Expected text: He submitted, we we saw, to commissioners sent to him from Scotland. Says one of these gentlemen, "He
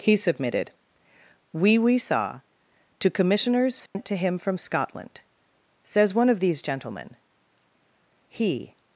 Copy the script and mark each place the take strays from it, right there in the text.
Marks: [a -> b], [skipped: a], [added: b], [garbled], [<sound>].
He submitted, we we saw, to commissioners sent [dropout] to him from Scotland. Says one of these gentlemen, "He